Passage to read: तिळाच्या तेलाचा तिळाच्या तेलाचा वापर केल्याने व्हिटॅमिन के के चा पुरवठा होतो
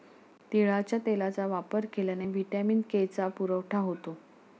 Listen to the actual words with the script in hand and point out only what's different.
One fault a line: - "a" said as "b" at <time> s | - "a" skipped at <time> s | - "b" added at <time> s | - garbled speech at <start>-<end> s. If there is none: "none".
- "तिळाच्या तेलाचा" skipped at 1.4 s
- "के" skipped at 3.1 s